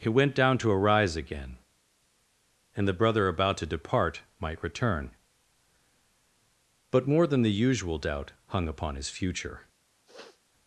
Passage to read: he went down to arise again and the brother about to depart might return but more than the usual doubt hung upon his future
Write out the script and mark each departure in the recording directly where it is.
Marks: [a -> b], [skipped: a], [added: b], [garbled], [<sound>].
he went down to arise again and the brother about to depart might return but more than the usual doubt hung upon his future [sniff]